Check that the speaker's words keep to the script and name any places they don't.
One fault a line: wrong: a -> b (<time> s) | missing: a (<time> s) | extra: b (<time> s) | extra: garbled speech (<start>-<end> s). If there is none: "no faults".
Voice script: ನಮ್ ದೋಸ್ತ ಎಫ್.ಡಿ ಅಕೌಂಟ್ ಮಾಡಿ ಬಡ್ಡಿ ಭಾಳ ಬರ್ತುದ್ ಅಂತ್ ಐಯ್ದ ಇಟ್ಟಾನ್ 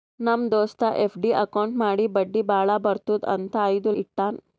no faults